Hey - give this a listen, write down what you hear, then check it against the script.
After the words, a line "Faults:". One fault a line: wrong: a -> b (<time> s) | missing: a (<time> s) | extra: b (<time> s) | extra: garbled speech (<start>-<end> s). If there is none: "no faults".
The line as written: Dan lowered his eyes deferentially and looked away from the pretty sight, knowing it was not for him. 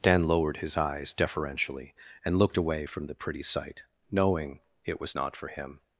Dan lowered his eyes deferentially and looked away from the pretty sight, knowing it was not for him.
Faults:
no faults